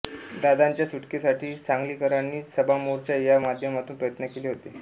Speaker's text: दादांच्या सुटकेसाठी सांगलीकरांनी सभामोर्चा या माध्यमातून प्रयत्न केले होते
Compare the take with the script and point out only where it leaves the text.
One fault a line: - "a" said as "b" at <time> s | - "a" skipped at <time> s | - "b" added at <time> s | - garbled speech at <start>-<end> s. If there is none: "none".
none